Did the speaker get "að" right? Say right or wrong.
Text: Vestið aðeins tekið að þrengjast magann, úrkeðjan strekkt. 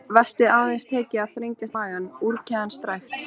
right